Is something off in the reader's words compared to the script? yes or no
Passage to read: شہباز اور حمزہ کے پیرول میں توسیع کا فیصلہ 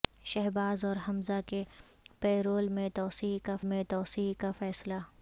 yes